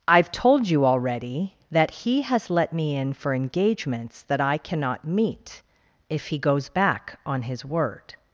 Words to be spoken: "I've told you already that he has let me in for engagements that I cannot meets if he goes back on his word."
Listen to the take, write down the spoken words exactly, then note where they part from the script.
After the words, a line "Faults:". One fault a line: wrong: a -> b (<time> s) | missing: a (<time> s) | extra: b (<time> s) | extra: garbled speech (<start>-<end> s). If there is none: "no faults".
"I've told you already that he has let me in for engagements that I cannot meet if he goes back on his word."
Faults:
wrong: meets -> meet (5.1 s)